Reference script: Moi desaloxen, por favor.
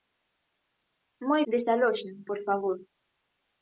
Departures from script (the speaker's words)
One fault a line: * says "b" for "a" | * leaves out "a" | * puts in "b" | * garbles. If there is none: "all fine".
all fine